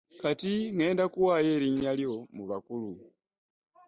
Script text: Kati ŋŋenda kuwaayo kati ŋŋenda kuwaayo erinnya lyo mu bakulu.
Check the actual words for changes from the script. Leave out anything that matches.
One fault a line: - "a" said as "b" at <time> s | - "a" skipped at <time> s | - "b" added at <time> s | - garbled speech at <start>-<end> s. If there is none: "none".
- "kati ŋŋenda kuwaayo" skipped at 1.5 s